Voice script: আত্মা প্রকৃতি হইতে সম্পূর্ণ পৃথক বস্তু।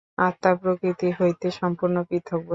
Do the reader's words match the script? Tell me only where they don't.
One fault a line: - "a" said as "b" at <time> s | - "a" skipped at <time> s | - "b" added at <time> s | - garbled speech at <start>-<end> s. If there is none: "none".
none